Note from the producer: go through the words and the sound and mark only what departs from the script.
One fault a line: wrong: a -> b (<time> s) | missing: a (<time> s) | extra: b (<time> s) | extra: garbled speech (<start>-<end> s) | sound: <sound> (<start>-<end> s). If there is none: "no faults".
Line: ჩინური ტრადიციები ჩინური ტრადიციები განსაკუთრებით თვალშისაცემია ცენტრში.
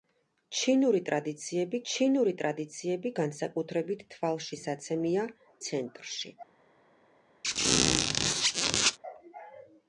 sound: squeak (7.4-9.0 s)